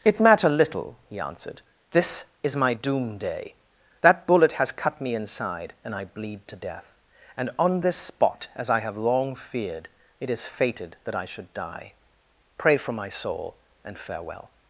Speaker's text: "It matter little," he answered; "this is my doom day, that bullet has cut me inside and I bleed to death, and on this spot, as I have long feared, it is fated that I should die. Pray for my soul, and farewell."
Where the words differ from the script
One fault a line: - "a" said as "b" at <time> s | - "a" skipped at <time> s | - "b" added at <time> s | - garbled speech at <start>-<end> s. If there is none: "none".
none